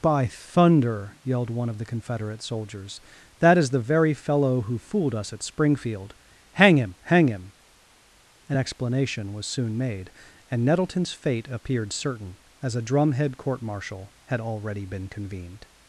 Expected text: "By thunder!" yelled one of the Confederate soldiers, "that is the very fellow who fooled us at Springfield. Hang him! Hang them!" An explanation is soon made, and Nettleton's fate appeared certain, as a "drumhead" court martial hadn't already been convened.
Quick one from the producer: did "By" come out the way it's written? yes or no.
yes